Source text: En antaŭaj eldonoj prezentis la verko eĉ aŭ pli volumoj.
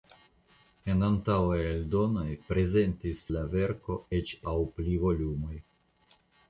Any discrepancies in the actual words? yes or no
no